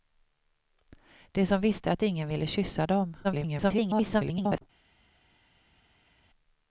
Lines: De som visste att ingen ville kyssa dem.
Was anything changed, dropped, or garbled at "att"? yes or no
no